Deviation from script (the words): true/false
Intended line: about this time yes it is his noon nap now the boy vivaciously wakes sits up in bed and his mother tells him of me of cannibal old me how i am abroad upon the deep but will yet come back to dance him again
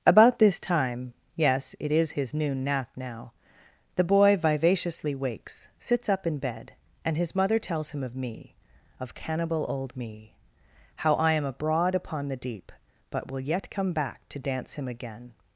false